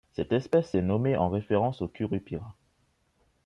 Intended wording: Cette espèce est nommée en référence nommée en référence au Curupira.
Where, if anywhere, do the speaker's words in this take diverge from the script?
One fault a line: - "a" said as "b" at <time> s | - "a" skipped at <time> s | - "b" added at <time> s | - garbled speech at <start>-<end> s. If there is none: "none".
- "nommée en référence" skipped at 1.8 s